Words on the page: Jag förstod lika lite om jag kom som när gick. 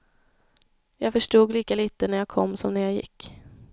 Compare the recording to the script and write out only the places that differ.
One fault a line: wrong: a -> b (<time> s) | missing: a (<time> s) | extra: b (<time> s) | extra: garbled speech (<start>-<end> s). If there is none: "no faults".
wrong: om -> när (2.1 s)
extra: jag (2.8 s)